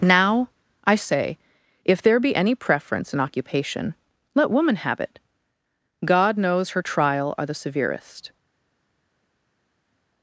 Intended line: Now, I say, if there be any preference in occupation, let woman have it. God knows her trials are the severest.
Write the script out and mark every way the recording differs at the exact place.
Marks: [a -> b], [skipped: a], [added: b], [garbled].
Now, I say, if there be any preference in occupation, let woman have it. God knows her [trials -> trial] are the severest.